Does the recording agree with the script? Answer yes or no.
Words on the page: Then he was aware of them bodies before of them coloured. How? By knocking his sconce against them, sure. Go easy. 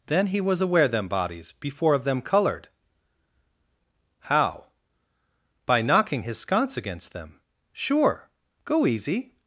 no